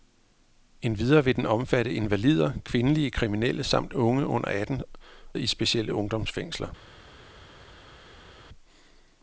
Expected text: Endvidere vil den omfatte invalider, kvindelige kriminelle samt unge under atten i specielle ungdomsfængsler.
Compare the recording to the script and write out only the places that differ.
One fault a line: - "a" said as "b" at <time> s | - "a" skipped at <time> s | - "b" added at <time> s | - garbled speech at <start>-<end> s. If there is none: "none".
none